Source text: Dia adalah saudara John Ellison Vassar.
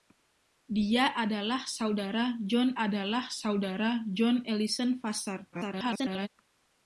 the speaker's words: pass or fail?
fail